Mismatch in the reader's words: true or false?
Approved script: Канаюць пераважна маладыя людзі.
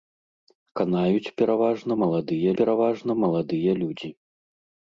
true